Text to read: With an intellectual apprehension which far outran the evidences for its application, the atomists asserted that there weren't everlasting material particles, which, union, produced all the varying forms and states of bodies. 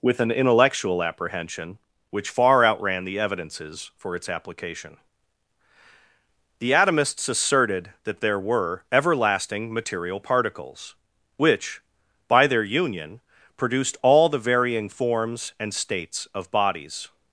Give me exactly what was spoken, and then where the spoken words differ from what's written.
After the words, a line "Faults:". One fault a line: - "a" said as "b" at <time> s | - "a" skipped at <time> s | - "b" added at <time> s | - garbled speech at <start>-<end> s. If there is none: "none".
With an intellectual apprehension which far outran the evidences for its application, the atomists asserted that there were everlasting material particles, which, by their union, produced all the varying forms and states of bodies.
Faults:
- "weren't" said as "were" at 8.4 s
- "by their" added at 12.3 s